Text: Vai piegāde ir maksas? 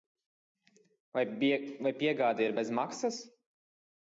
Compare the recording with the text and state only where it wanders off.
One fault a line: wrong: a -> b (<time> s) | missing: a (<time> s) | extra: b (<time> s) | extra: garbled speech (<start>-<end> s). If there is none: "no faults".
extra: bez (2.6 s)